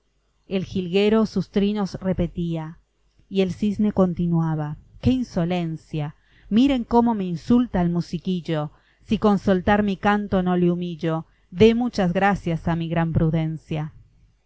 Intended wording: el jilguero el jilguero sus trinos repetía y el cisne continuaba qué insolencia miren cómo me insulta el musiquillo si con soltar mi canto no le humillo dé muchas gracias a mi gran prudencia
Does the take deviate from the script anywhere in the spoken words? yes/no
yes